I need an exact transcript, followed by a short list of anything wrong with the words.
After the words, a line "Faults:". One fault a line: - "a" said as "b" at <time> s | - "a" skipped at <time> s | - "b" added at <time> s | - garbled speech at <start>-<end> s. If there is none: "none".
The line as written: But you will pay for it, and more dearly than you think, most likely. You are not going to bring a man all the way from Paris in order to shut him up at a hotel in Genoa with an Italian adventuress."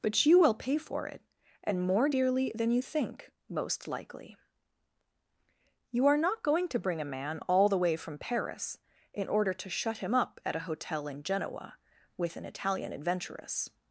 But you will pay for it, and more dearly than you think, most likely. You are not going to bring a man all the way from Paris in order to shut him up at a hotel in Genoa with an Italian adventuress."
Faults:
none